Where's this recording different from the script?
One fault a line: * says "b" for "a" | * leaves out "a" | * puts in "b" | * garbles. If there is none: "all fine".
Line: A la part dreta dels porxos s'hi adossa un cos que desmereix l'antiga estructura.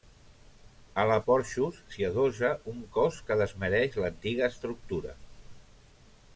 * leaves out "part dreta dels"